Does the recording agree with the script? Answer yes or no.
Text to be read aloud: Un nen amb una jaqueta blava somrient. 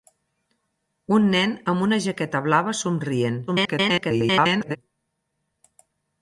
no